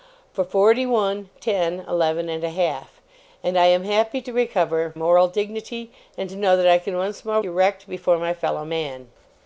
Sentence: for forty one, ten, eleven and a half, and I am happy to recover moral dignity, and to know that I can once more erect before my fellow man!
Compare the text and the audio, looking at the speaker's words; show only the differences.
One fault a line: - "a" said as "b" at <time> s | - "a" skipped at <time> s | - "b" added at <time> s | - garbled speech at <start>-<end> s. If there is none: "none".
none